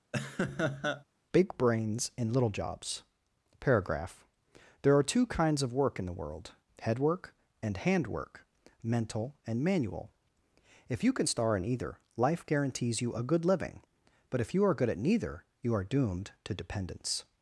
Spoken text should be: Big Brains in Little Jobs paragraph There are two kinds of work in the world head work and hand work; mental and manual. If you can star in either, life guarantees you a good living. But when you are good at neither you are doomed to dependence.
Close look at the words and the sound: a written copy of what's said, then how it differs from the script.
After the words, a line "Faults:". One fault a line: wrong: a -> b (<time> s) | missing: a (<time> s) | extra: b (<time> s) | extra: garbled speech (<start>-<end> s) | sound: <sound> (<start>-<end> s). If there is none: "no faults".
Big Brains in Little Jobs paragraph There are two kinds of work in the world head work and hand work; mental and manual. If you can star in either, life guarantees you a good living. But if you are good at neither you are doomed to dependence.
Faults:
sound: laugh (0.1-1.0 s)
wrong: when -> if (14.4 s)